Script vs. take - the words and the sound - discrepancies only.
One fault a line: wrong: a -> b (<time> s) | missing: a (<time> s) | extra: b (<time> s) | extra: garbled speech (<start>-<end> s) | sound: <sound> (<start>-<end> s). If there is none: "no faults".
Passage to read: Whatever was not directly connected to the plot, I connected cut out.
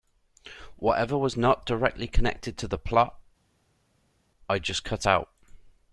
wrong: connected -> just (4.6 s)